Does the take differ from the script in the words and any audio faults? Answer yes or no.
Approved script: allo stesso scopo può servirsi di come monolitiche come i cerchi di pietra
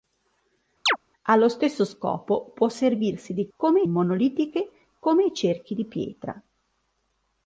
yes